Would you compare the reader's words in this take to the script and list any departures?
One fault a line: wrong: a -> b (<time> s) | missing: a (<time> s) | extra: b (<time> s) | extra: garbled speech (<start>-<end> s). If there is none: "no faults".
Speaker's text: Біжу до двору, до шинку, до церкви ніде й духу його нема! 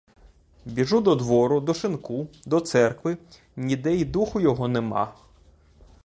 no faults